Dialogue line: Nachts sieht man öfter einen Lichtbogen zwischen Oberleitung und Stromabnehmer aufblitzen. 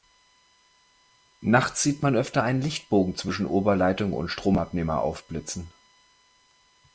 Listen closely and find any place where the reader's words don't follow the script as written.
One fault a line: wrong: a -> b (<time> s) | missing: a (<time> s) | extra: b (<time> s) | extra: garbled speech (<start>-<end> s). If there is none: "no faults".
no faults